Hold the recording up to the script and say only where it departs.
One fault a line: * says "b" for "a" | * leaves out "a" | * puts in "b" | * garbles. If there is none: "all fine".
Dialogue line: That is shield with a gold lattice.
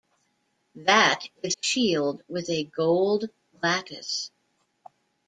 all fine